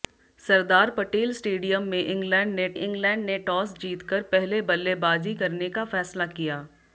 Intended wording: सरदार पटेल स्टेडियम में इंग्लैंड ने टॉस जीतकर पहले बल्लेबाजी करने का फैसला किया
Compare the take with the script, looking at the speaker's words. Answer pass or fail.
fail